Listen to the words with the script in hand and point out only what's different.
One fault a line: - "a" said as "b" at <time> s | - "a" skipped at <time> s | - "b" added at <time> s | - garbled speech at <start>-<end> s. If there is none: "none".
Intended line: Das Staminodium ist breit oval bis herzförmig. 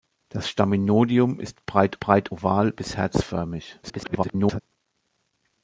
- "breit" added at 2.0 s
- garbled speech at 3.8-4.6 s